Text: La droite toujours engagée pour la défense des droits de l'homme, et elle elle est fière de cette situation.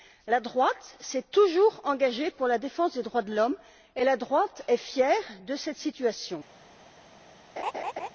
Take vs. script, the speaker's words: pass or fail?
fail